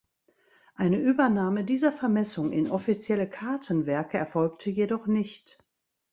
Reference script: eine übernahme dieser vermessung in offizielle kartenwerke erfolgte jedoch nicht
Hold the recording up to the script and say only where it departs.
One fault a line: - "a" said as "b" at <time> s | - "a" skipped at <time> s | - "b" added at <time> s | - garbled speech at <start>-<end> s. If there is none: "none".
none